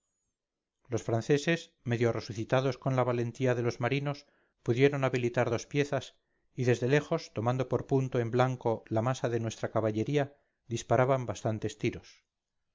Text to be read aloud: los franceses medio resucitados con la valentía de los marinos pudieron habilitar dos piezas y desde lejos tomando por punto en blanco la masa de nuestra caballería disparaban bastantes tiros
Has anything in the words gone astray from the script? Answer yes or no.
no